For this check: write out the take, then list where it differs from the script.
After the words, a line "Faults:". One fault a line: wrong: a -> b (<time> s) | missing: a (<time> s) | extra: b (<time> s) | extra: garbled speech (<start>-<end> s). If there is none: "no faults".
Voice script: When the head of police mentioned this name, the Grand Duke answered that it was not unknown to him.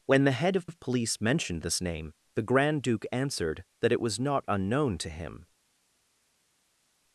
When the head of of police mentioned this name, the Grand Duke answered that it was not unknown to him.
Faults:
extra: of (0.6 s)